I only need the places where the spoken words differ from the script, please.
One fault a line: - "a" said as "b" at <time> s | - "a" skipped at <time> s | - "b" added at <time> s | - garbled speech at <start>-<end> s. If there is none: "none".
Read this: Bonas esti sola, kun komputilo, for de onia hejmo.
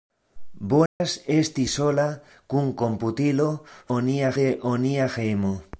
- "for" said as "onia" at 4.0 s